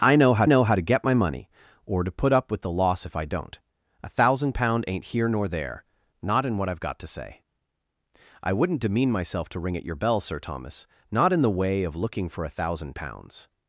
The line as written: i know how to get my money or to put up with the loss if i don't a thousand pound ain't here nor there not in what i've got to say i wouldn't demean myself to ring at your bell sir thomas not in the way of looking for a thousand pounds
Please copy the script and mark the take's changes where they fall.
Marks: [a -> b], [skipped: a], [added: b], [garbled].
i know how [added: know how] to get my money or to put up with the loss if i don't a thousand pound ain't here nor there not in what i've got to say i wouldn't demean myself to ring at your bell sir thomas not in the way of looking for a thousand pounds